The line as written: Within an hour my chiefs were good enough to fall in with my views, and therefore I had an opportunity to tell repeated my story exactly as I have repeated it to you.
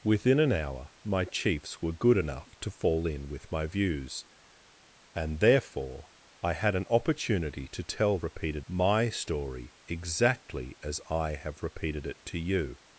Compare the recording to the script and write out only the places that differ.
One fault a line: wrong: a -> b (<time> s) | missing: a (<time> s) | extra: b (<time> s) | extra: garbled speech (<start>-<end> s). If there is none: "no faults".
no faults